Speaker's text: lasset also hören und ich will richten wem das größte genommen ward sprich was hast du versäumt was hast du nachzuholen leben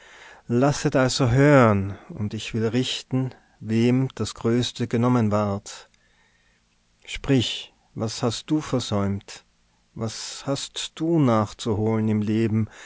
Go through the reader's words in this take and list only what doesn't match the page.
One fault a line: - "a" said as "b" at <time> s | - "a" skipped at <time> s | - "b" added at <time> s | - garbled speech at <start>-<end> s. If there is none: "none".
- "im" added at 12.1 s